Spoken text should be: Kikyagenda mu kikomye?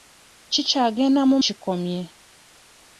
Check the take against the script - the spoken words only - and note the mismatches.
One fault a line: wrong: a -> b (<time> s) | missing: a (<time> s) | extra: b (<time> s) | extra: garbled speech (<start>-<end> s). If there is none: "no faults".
no faults